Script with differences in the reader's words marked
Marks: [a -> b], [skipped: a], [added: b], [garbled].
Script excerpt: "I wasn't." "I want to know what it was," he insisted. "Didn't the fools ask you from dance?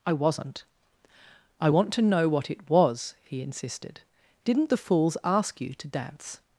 "I wasn't." "I want to know what it was," he insisted. "Didn't the fools ask you [from -> to] dance?